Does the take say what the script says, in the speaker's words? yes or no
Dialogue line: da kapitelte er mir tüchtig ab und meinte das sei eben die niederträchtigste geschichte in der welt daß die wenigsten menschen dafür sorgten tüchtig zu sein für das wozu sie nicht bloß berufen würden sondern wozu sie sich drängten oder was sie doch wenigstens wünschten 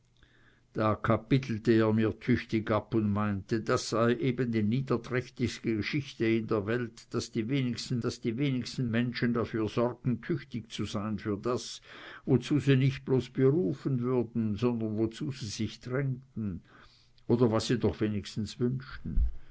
no